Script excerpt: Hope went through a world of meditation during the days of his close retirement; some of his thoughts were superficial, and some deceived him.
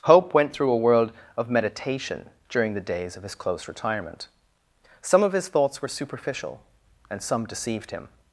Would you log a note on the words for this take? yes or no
no